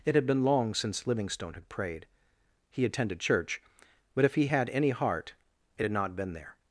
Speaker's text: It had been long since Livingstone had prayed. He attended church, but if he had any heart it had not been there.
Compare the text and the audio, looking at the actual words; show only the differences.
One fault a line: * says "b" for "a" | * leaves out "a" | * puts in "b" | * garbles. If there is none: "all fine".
all fine